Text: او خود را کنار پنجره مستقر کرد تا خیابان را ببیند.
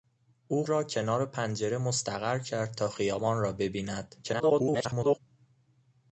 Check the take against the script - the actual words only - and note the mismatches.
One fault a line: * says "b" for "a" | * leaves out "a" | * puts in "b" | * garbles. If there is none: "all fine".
* leaves out "خود"
* garbles